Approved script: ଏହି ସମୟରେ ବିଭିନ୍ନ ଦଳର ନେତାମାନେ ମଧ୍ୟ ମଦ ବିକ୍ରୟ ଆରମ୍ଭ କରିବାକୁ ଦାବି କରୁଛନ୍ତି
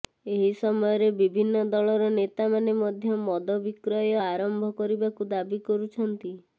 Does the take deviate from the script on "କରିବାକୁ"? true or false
false